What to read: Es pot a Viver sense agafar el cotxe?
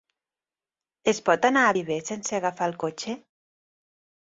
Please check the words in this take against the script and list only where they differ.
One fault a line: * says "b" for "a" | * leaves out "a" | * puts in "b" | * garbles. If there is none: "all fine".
* puts in "anar"